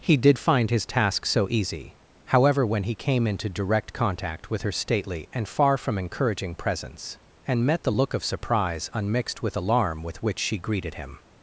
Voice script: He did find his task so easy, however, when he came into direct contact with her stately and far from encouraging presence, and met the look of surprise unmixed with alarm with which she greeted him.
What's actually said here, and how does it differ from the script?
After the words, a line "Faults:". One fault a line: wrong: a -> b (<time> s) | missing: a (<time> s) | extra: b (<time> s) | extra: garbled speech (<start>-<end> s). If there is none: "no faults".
He did find his task so easy, however, when he came into direct contact with her stately and far from encouraging presence, and met the look of surprise unmixed with alarm with which she greeted him.
Faults:
no faults